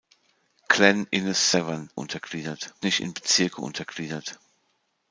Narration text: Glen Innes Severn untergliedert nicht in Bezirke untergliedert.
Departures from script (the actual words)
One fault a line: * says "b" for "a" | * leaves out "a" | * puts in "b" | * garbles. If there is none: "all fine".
all fine